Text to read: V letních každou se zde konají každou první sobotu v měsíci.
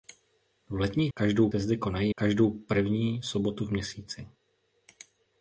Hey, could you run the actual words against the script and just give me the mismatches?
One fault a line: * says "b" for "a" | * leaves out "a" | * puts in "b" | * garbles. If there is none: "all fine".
all fine